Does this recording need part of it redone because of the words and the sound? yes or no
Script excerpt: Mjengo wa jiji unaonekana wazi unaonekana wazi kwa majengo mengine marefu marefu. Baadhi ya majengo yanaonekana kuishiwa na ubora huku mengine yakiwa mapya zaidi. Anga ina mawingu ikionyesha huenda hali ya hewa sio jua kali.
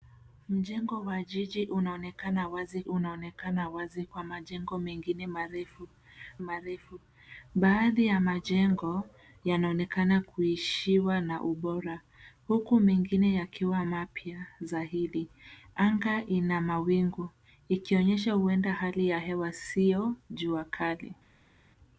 no